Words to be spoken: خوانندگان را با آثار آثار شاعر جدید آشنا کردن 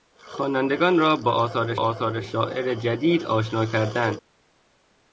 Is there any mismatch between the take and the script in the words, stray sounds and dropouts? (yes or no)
no